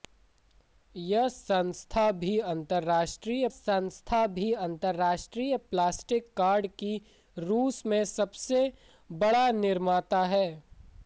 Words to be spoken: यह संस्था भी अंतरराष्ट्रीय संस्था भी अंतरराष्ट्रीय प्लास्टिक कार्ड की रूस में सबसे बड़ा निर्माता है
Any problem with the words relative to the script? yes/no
no